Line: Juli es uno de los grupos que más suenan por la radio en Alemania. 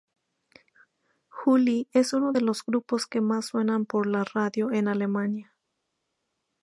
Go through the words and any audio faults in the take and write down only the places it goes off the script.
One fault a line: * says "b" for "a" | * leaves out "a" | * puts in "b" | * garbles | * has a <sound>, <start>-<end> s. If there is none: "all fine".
all fine